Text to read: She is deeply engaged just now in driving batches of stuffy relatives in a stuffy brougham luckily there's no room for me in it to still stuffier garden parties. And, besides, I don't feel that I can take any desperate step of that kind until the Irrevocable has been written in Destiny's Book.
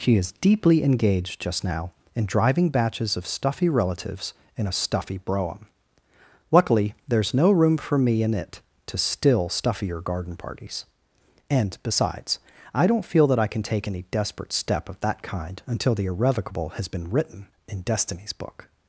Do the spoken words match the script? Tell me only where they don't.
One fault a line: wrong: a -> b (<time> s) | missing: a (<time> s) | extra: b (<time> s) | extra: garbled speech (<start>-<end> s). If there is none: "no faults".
no faults